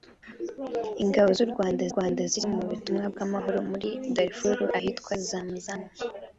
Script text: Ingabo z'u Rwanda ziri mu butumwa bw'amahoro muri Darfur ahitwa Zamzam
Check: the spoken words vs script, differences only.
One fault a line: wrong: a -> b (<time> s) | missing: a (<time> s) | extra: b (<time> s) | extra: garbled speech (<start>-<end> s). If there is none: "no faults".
extra: Rwanda (1.9 s)